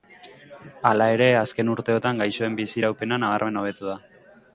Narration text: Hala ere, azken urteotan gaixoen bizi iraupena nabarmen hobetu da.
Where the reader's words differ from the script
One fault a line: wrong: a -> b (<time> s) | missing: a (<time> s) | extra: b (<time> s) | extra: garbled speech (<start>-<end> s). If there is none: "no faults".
no faults